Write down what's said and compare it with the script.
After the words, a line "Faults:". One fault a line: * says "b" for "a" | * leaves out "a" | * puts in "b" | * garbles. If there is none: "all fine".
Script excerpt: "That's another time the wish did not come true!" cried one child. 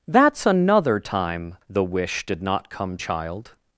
"That's another time the wish did not come child.
Faults:
* leaves out "true cried one"